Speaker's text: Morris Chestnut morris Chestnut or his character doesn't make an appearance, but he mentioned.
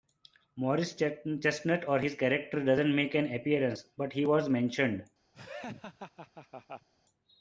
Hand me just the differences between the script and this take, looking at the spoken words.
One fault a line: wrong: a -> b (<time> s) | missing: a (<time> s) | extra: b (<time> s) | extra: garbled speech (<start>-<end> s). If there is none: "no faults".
missing: morris Chestnut (1.9 s)
extra: was (4.2 s)